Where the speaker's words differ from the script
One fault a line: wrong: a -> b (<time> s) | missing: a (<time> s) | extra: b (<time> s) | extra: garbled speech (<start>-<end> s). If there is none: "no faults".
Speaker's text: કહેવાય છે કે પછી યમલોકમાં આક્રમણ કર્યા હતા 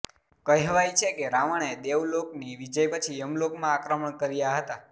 extra: રાવણએ દેવલોકની વિજય (1.3 s)